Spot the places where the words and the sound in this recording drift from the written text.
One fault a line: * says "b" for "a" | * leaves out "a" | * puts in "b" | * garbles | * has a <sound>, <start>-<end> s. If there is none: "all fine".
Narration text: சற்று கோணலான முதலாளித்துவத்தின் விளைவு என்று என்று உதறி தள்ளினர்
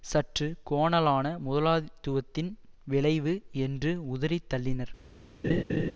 * leaves out "என்று"
* has a laugh, 5.4-5.9 s